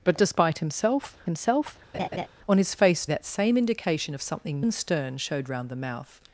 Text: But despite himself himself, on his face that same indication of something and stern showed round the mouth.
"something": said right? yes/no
yes